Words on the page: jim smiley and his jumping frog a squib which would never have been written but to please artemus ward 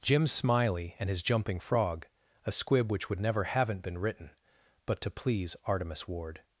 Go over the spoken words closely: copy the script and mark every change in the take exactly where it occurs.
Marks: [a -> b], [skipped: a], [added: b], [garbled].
jim smiley and his jumping frog a squib which would never [have -> haven't] been written but to please artemus ward